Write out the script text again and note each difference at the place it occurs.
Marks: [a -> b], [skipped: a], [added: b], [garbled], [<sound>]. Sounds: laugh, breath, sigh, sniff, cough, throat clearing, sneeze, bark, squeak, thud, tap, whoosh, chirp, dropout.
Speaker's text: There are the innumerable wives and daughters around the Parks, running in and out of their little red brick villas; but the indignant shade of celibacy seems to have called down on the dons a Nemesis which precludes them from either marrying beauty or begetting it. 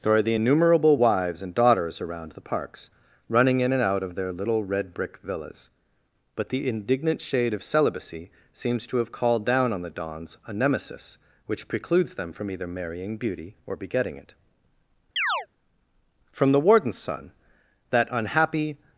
There are the innumerable wives and daughters around the Parks, running in and out of their little red brick villas; but the indignant shade of celibacy seems to have called down on the dons a Nemesis which precludes them from either marrying beauty or begetting it. [chirp] [added: From the Warden's son that unhappy]